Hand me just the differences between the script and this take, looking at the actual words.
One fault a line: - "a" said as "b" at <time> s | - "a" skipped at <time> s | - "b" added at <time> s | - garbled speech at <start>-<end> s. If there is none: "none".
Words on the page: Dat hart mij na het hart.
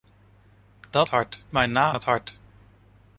none